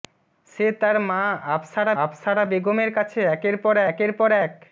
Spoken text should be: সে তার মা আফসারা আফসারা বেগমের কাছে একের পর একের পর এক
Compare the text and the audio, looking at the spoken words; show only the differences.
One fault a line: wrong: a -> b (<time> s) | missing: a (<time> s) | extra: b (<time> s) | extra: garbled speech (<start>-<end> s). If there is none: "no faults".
no faults